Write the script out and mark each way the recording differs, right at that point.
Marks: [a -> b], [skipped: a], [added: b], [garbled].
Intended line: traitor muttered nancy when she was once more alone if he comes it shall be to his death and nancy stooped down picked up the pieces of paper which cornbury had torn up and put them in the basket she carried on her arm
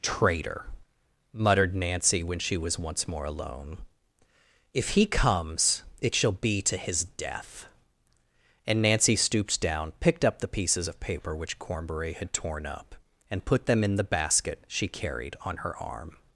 traitor muttered nancy when she was once more alone if he comes it shall be to his death and nancy stooped down picked up the pieces of paper which cornbury had torn up and put them in the basket she carried on her arm